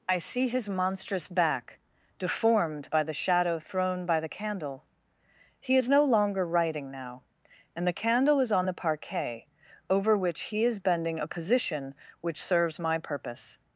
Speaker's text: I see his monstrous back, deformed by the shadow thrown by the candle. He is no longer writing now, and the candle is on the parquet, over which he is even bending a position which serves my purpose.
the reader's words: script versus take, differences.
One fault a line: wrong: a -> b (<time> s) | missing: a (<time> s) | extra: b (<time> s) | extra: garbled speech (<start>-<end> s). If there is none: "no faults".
missing: even (10.8 s)